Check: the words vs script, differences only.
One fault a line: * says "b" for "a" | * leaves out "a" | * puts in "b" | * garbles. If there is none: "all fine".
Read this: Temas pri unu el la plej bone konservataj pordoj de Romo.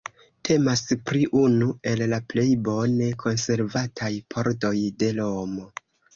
all fine